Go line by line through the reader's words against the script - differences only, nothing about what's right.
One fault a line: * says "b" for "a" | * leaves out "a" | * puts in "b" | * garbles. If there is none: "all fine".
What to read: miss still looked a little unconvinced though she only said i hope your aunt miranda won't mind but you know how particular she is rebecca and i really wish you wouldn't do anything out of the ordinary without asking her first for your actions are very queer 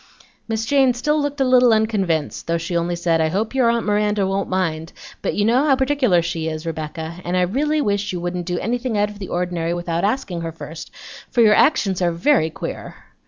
* puts in "jane"